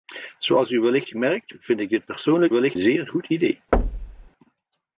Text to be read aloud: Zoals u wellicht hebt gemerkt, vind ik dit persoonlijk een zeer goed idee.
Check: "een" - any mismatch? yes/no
yes